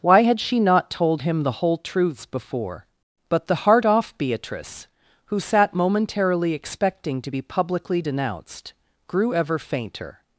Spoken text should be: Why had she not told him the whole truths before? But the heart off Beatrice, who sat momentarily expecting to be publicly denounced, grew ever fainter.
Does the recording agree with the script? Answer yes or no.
yes